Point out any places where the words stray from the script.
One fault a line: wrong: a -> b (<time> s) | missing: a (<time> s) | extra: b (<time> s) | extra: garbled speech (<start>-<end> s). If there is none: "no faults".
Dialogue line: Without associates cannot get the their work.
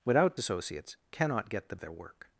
no faults